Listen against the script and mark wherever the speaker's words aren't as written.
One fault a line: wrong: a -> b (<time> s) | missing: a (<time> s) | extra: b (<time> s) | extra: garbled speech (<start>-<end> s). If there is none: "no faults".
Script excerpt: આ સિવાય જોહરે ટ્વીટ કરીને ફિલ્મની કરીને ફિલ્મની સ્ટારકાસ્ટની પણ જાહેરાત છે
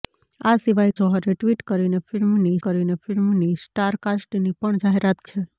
no faults